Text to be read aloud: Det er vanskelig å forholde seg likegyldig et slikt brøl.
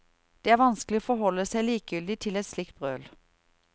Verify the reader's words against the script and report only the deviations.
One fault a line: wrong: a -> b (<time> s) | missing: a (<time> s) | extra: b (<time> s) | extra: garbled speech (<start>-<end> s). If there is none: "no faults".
extra: til (2.2 s)